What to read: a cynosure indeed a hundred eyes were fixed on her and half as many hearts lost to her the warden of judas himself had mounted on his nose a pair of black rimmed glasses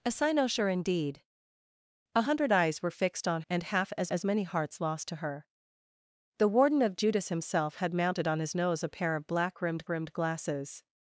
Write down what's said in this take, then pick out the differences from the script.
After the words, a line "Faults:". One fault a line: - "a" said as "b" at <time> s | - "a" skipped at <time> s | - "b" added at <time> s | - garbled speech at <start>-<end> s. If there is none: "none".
a cynosure indeed a hundred eyes were fixed on and half as as many hearts lost to her the warden of judas himself had mounted on his nose a pair of black rimmed rimmed glasses
Faults:
- "her" skipped at 3.4 s
- "as" added at 4.1 s
- "rimmed" added at 9.9 s